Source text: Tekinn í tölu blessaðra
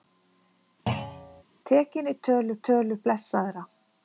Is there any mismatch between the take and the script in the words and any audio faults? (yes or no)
yes